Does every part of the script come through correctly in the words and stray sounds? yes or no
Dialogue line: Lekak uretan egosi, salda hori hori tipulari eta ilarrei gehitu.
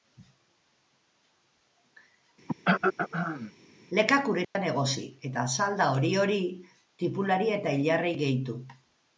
no